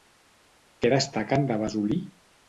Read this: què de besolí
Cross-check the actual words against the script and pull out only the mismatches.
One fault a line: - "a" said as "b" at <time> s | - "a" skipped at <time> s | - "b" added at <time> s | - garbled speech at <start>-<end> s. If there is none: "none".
- "destaquen" added at 0.9 s